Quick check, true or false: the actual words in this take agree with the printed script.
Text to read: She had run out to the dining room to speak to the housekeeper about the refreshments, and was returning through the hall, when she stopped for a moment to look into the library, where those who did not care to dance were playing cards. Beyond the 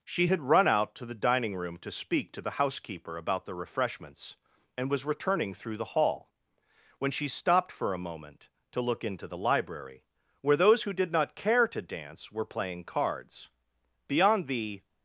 true